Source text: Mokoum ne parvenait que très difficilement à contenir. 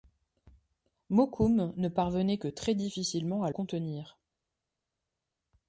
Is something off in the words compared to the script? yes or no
no